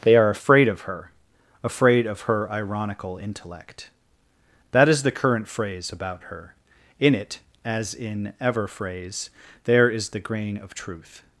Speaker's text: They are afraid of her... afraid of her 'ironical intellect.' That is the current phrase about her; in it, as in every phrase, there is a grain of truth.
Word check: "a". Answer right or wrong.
wrong